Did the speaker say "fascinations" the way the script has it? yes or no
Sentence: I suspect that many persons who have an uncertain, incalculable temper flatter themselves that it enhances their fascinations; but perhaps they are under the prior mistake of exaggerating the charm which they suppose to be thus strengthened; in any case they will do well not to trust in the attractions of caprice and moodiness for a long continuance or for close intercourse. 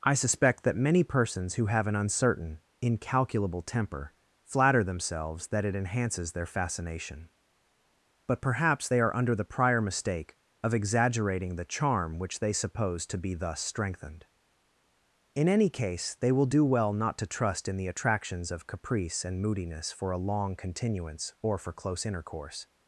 no